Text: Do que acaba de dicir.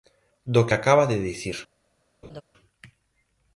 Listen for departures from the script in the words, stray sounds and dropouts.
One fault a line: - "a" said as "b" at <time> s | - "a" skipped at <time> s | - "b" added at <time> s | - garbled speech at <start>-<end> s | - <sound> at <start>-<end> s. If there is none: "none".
- laugh at 2.2-2.4 s